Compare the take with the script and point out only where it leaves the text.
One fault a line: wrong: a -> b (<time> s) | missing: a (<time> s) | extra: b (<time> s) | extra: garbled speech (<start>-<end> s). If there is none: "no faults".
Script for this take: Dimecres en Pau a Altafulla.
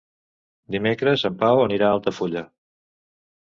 extra: anirà (1.6 s)